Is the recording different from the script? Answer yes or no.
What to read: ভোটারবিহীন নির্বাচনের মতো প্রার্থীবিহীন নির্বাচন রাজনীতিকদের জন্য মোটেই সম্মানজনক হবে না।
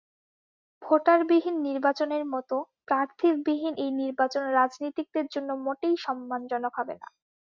yes